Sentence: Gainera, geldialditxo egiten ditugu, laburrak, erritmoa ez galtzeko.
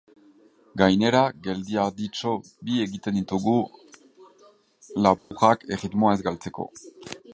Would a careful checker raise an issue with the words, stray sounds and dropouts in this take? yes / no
yes